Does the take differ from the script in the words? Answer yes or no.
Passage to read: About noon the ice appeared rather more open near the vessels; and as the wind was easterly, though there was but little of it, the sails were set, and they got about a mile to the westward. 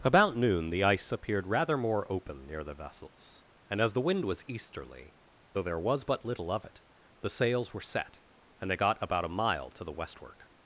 no